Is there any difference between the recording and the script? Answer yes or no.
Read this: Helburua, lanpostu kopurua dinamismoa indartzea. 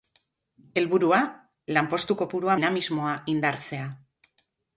no